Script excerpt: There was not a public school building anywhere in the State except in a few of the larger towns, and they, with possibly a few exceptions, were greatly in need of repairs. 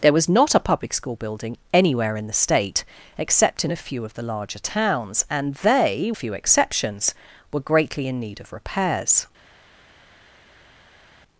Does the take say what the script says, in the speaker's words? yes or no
no